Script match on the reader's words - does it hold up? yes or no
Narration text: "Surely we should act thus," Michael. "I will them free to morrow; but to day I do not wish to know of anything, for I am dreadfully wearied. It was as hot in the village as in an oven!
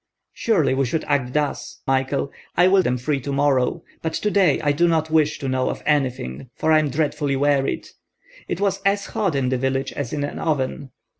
yes